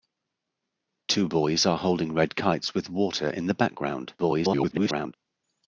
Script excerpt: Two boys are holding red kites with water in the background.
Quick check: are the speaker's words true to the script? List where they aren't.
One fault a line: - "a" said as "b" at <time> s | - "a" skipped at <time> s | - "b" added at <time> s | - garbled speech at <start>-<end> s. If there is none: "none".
- garbled speech at 4.2-5.1 s